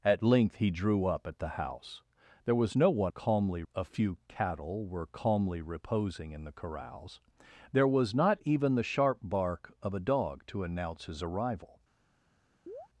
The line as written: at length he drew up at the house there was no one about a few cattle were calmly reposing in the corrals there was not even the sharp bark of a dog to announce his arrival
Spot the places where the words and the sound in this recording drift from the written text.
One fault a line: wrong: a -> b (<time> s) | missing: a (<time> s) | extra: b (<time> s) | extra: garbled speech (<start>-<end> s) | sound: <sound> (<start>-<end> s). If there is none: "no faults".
wrong: about -> calmly (3.1 s)
sound: chirp (12.7-12.9 s)